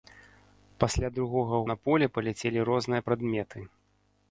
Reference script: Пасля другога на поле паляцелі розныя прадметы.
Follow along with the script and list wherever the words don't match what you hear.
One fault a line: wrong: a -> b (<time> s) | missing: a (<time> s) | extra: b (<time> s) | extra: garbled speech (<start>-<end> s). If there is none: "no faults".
no faults